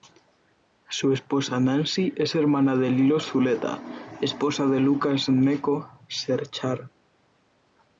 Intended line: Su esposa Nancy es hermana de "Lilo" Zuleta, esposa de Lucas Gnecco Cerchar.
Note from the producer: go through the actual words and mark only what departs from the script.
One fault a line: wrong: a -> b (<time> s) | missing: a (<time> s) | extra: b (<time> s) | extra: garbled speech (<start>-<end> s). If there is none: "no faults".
no faults